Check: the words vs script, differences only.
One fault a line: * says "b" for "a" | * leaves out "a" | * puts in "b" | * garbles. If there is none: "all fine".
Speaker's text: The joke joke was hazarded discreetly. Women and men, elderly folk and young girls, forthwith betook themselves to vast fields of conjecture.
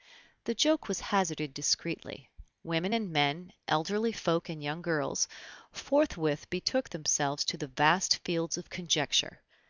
* leaves out "joke"
* puts in "the"